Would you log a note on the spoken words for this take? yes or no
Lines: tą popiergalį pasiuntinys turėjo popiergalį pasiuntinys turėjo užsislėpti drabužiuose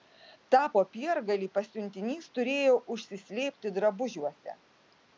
yes